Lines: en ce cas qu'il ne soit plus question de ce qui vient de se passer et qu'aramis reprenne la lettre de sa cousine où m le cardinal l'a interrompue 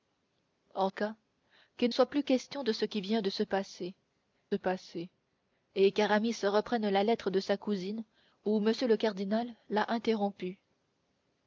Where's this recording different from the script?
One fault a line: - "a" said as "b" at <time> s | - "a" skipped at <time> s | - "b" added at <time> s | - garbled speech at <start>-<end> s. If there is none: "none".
- "ce" skipped at 0.9 s
- "ne" skipped at 1.9 s
- "passer" added at 4.5 s